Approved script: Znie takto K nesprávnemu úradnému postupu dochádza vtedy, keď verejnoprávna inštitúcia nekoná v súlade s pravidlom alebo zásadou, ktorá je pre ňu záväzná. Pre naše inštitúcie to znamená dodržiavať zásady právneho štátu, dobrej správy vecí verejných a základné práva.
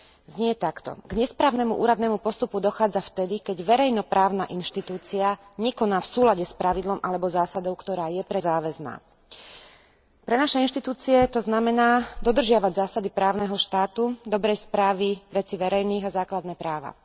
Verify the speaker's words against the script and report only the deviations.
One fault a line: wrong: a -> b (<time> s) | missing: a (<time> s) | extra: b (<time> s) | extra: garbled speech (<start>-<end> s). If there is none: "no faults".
missing: ňu (8.4 s)